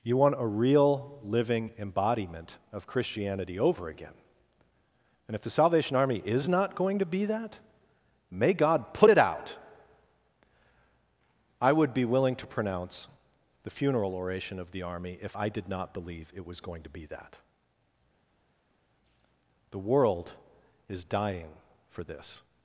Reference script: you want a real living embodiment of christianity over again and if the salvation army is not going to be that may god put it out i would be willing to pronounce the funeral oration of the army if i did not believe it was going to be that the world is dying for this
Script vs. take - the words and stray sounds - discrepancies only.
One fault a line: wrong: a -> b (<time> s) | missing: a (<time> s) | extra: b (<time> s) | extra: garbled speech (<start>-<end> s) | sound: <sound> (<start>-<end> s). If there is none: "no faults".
no faults